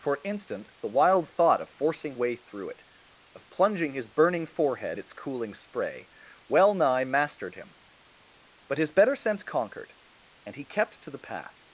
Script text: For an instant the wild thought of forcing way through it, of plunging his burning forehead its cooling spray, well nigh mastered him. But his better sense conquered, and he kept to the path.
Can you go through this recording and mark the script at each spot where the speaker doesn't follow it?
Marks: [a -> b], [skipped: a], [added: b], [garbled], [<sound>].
For an instant the wild thought of forcing way through it, of plunging his burning forehead its cooling spray, well nigh mastered him. But his better sense conquered, and he kept to the path.